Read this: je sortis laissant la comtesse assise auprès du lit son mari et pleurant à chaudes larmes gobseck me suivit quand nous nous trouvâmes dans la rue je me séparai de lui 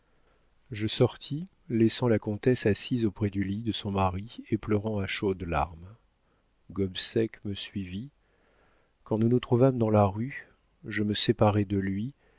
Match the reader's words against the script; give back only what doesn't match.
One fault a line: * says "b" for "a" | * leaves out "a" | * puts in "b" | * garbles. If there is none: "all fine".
* puts in "de"